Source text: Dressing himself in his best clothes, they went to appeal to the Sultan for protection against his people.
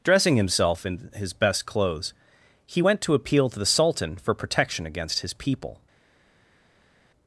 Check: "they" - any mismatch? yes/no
yes